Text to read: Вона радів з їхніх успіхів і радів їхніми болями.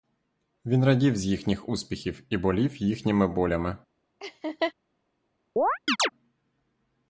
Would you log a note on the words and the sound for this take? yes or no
yes